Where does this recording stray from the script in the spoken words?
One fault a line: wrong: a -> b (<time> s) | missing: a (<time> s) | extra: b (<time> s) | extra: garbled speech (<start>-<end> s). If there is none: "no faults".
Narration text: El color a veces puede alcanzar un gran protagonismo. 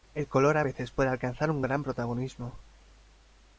no faults